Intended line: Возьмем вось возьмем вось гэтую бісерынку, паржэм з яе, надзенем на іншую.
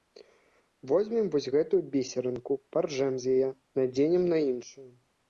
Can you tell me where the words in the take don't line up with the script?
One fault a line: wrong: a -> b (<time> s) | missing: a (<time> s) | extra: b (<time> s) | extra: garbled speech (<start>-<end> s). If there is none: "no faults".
missing: возьмем вось (1.5 s)